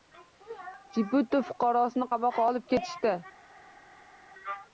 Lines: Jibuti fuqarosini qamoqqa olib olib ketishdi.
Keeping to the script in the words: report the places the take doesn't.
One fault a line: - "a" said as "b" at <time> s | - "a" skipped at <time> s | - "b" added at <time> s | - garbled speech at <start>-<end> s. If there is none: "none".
- "olib" skipped at 2.7 s